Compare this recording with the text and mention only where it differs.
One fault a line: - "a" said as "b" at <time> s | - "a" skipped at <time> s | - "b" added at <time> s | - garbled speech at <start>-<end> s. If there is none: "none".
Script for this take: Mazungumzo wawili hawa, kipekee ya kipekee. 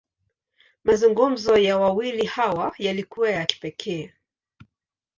- "ya" added at 1.6 s
- "kipekee" said as "yalikuwa" at 2.8 s